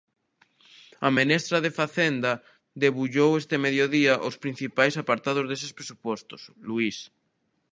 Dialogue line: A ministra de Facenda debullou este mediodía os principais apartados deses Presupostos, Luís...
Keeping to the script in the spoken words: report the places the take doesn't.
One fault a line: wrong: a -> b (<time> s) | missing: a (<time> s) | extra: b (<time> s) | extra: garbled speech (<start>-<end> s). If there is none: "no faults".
no faults